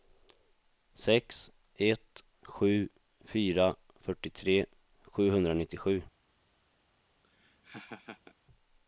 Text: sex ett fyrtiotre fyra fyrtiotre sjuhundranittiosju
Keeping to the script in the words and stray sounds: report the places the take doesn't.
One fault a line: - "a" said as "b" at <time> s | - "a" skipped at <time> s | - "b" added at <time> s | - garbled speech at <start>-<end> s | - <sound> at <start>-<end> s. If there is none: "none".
- "fyrtiotre" said as "sju" at 2.4 s
- laugh at 7.2-8.4 s